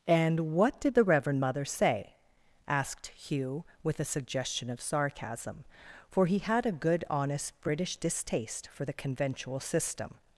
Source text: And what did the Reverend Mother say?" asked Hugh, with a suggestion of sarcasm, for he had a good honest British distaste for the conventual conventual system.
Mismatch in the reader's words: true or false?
true